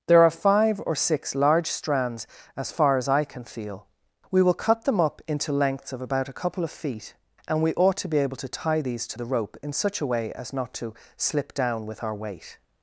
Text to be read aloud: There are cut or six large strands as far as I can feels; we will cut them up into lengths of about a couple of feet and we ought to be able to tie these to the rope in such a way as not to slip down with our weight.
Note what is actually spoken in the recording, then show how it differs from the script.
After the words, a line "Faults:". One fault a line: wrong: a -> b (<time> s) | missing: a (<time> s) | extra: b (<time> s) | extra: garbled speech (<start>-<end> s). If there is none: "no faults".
There are five or six large strands as far as I can feel; we will cut them up into lengths of about a couple of feet and we ought to be able to tie these to the rope in such a way as not to slip down with our weight.
Faults:
wrong: cut -> five (0.3 s)
wrong: feels -> feel (3.4 s)